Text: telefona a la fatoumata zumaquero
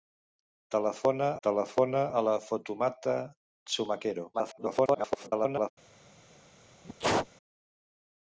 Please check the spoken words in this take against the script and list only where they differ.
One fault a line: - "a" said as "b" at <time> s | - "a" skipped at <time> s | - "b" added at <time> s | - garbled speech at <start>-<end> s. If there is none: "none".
- "telefona" added at 1.5 s
- garbled speech at 4.3-5.7 s